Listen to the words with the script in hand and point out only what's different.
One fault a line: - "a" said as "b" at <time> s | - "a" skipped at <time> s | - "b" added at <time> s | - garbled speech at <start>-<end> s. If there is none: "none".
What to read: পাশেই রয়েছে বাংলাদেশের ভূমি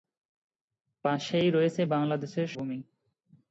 none